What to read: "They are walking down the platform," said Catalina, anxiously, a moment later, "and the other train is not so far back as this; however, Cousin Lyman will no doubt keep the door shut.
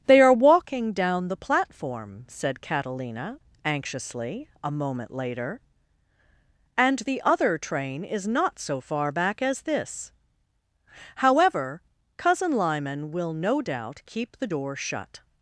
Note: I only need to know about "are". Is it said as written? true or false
true